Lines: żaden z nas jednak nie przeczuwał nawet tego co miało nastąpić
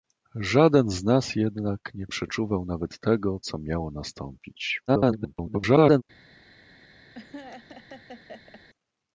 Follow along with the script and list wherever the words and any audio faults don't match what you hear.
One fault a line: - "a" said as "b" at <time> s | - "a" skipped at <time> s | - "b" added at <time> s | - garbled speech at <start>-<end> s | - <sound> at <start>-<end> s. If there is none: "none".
- garbled speech at 4.9-6.0 s
- laugh at 7.1-8.6 s